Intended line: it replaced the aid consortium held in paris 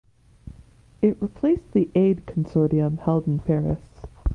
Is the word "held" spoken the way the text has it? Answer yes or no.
yes